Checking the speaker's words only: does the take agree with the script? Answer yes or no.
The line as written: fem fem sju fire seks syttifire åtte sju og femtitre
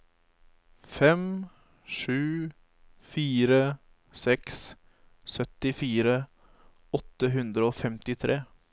no